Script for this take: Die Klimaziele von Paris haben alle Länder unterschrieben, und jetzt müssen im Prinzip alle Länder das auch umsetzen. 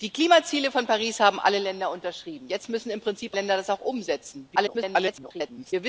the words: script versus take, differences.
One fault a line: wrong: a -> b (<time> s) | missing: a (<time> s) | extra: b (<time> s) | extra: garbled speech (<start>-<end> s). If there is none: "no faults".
missing: und (2.5 s)
missing: alle (3.4 s)
extra: garbled speech (4.6-5.7 s)